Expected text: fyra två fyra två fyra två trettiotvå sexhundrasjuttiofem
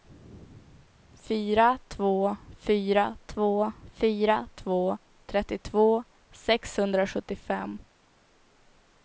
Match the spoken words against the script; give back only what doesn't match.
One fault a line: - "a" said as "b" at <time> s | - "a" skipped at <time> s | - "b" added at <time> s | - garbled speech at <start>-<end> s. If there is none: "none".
none